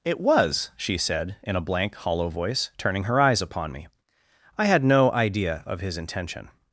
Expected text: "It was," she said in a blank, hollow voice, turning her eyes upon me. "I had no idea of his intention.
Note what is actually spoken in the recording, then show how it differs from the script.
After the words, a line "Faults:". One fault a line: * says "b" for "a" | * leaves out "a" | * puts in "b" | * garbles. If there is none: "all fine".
"It was," she said in a blank, hollow voice, turning her eyes upon me. "I had no idea of his intention.
Faults:
all fine